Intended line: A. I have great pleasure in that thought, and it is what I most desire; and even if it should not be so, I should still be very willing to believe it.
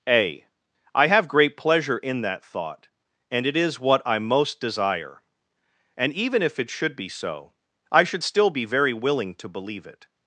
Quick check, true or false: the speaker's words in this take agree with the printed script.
false